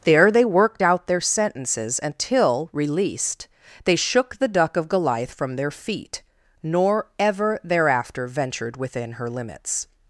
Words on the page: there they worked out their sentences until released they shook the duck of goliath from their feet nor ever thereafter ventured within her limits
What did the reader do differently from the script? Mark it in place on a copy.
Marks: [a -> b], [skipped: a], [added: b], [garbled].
there they worked out their sentences until released they shook the duck of goliath from their feet nor ever thereafter ventured within her limits